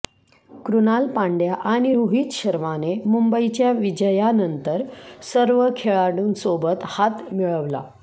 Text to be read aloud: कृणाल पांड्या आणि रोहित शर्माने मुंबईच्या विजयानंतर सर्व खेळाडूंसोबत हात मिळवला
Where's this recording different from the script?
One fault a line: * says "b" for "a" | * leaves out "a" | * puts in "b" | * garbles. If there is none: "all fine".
all fine